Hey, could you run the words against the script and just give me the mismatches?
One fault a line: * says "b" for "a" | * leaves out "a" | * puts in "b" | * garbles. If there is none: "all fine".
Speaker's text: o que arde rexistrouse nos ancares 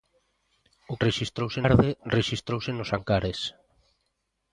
* says "rexistrouse" for "que"